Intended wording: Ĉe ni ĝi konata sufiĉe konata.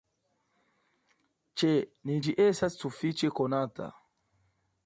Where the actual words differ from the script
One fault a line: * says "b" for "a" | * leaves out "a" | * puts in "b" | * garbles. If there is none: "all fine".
* says "estas" for "konata"